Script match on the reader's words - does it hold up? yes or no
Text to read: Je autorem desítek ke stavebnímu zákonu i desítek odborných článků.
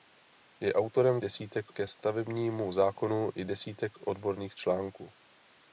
yes